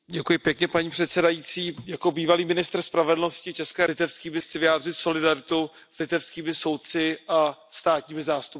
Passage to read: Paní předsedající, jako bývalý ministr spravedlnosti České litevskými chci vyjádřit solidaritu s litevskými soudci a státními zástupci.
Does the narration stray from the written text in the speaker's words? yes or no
no